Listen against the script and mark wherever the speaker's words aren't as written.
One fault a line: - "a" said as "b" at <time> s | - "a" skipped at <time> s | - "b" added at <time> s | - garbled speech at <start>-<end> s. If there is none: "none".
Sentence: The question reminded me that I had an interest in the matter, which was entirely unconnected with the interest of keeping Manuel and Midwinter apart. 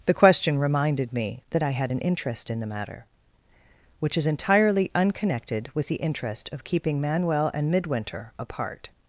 - "was" said as "is" at 4.2 s